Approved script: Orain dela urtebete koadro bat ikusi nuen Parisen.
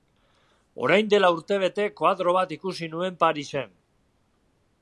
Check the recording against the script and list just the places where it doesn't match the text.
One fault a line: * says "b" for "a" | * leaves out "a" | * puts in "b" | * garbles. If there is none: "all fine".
all fine